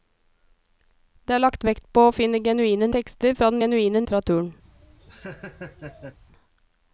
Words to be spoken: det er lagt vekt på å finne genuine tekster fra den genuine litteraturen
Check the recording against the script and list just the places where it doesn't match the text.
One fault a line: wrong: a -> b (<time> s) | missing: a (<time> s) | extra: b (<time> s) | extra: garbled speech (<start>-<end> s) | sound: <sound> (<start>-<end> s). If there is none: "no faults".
sound: laugh (4.6-6.2 s)